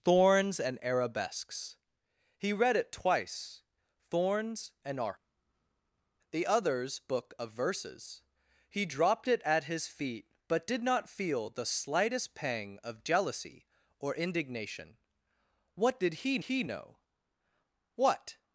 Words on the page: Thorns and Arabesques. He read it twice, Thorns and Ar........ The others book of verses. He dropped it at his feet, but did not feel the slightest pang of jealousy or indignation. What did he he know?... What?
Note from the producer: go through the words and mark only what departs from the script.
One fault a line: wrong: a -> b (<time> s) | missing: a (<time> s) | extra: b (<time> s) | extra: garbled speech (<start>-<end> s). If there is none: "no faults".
no faults